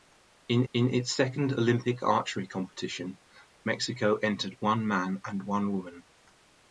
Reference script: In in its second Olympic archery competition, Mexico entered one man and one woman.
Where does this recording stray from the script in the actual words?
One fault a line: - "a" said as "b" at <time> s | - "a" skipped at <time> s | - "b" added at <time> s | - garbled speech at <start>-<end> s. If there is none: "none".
none